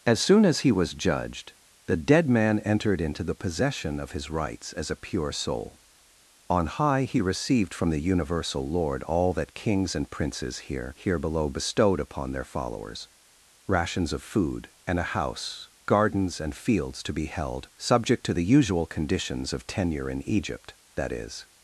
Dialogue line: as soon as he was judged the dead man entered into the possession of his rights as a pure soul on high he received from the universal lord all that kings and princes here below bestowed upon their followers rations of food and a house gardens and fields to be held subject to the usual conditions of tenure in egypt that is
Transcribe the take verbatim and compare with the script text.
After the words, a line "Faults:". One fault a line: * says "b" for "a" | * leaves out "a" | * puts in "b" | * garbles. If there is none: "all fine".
as soon as he was judged the dead man entered into the possession of his rights as a pure soul on high he received from the universal lord all that kings and princes here here below bestowed upon their followers rations of food and a house gardens and fields to be held subject to the usual conditions of tenure in egypt that is
Faults:
* puts in "here"